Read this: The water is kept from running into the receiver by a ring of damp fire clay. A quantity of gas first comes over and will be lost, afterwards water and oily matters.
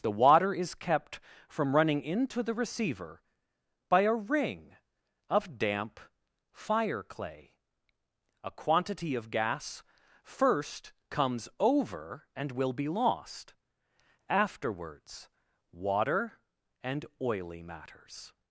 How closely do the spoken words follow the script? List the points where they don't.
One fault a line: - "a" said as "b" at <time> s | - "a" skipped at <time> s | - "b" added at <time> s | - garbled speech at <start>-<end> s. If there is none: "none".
none